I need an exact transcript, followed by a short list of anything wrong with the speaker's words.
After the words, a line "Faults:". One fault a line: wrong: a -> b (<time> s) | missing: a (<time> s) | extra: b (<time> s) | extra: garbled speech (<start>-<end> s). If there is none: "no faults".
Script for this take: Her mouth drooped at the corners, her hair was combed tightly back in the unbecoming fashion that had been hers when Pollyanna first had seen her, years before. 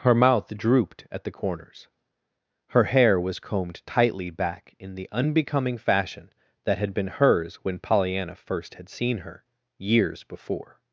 Her mouth drooped at the corners, her hair was combed tightly back in the unbecoming fashion that had been hers when Pollyanna first had seen her, years before.
Faults:
no faults